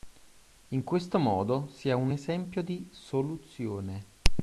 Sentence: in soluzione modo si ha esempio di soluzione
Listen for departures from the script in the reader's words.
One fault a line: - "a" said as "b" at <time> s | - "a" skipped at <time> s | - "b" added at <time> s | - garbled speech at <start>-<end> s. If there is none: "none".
- "soluzione" said as "questo" at 0.8 s
- "un" added at 1.9 s